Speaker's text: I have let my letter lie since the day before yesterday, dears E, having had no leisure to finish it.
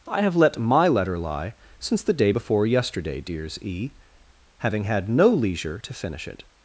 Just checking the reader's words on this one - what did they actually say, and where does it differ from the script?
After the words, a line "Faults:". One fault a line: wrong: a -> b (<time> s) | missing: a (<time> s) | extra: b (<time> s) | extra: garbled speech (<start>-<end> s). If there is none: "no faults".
I have let my letter lie since the day before yesterday, dears E, having had no leisure to finish it.
Faults:
no faults